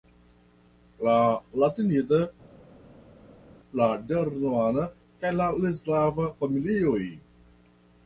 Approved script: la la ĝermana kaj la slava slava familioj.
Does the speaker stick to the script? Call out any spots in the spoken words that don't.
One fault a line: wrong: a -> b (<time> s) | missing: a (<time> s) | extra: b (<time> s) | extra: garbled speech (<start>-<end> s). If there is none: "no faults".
extra: latinida (1.6 s)
missing: slava (6.3 s)